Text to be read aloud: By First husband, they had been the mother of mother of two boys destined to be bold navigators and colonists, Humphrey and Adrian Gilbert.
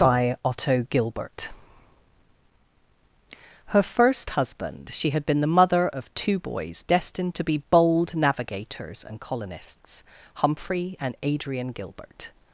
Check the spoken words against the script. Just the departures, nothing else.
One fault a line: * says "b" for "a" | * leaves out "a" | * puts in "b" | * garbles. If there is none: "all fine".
* puts in "Otto Gilbert her"
* says "she" for "they"
* leaves out "mother of"